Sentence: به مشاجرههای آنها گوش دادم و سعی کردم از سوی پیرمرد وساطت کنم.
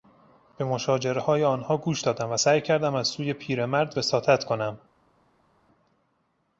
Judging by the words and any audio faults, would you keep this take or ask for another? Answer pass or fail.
pass